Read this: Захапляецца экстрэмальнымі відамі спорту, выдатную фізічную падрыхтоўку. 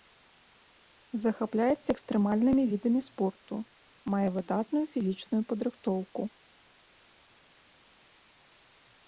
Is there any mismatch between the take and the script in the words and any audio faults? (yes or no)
yes